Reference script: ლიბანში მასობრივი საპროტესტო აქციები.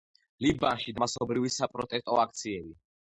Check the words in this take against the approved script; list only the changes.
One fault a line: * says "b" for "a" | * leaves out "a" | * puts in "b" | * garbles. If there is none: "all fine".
all fine